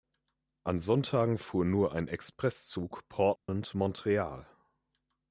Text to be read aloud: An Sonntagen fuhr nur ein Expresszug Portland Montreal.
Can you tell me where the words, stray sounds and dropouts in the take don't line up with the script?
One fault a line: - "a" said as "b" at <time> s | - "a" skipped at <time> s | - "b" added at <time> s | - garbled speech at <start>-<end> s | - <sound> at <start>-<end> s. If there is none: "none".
- dropout at 3.4-3.5 s